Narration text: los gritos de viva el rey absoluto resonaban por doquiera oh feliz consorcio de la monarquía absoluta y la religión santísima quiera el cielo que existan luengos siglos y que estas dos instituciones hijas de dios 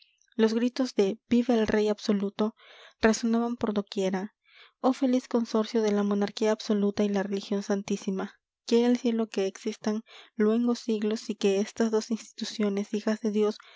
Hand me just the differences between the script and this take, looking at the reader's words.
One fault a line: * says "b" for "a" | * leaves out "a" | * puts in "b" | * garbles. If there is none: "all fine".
all fine